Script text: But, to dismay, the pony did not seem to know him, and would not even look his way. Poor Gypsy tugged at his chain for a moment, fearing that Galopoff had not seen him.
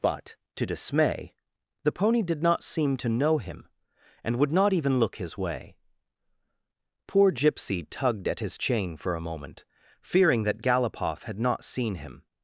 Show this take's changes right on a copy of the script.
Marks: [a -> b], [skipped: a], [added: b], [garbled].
But, to dismay, the pony did not seem to know him, and would not even look his way. Poor Gypsy tugged at his chain for a moment, fearing that Galopoff had not seen him.